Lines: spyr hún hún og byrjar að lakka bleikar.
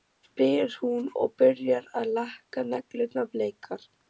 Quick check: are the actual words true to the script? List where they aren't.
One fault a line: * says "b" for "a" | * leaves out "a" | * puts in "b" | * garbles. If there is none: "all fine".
* leaves out "hún"
* puts in "neglurnar"